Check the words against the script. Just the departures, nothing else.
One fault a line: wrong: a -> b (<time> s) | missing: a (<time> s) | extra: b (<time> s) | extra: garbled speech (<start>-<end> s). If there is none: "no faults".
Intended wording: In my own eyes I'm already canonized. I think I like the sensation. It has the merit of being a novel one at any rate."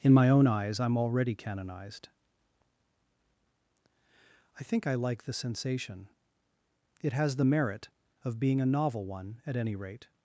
no faults